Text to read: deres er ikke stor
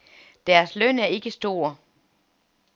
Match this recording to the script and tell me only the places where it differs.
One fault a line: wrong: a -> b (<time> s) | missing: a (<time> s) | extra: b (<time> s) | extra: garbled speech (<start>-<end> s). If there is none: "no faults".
extra: løn (0.8 s)